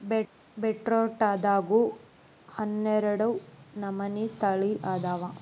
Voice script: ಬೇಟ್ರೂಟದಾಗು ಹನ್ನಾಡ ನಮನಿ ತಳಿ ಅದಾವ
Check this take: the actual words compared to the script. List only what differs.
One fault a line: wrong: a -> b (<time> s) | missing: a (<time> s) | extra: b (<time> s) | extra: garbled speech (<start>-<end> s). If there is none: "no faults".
no faults